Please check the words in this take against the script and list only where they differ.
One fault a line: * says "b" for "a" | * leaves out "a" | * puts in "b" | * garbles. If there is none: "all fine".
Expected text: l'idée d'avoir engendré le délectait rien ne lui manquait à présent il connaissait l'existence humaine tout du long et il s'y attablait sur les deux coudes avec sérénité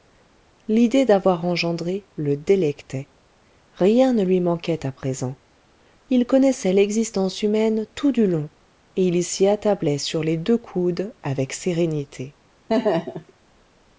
all fine